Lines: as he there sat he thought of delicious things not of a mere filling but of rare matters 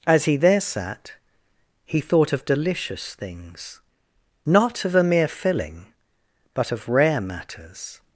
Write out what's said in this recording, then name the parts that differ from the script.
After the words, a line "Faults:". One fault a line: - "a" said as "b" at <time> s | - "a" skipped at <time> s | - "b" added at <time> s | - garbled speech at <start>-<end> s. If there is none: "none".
as he there sat he thought of delicious things not of a mere filling but of rare matters
Faults:
none